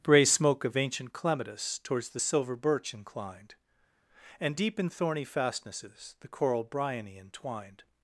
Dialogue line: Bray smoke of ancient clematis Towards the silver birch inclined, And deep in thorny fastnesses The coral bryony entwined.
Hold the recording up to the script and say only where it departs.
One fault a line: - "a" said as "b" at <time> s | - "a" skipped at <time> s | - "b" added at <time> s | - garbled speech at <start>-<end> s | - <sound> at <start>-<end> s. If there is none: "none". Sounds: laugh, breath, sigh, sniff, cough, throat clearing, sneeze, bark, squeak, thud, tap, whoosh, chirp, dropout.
none